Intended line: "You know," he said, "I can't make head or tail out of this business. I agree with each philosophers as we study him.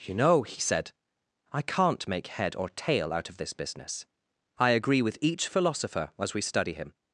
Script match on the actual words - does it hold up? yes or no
no